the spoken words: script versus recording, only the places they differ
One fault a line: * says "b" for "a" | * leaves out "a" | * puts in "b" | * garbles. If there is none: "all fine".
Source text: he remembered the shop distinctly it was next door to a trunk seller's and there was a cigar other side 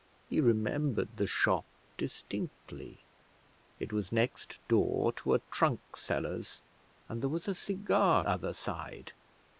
all fine